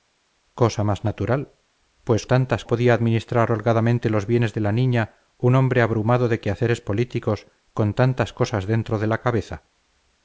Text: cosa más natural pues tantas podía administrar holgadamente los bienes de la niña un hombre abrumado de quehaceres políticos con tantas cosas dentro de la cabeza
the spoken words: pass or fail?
pass